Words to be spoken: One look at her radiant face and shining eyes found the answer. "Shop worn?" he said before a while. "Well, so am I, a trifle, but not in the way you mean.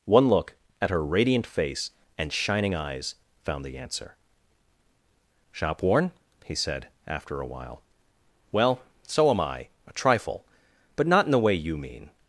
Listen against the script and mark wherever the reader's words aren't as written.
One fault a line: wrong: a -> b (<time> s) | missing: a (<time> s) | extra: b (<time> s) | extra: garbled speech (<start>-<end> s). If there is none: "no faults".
wrong: before -> after (7.1 s)